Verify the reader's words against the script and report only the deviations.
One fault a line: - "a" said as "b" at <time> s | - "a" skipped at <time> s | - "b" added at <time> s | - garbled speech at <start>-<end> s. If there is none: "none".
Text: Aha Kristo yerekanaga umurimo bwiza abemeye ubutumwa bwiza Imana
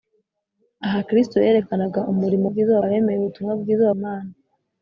none